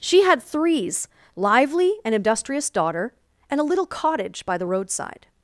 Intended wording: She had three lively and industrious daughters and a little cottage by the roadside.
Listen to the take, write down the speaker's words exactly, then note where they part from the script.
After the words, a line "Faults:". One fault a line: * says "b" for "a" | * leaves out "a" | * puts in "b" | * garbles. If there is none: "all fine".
She had threes lively and industrious daughter and a little cottage by the roadside.
Faults:
* says "threes" for "three"
* says "daughter" for "daughters"